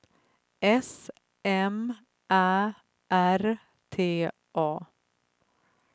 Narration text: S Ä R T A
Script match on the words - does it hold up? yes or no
no